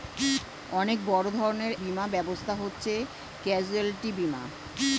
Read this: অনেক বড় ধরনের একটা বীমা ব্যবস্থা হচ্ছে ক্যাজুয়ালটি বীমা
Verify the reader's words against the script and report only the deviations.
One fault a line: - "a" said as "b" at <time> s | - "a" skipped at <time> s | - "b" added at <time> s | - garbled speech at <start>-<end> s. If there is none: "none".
- "একটা" skipped at 1.7 s